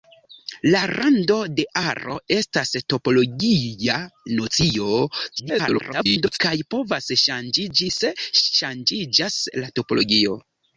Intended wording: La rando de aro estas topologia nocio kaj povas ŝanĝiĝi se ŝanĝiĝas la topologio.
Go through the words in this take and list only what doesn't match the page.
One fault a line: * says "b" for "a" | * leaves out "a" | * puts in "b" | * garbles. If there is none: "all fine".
* garbles